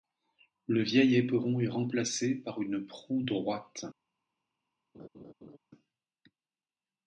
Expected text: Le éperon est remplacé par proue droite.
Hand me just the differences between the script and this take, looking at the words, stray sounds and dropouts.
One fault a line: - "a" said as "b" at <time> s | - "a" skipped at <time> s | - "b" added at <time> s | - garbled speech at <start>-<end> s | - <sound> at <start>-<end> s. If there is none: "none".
- "vieil" added at 0.8 s
- "une" added at 2.6 s
- laugh at 4.9-5.6 s